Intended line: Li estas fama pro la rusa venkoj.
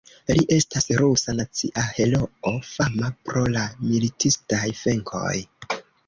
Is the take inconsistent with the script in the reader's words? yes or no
yes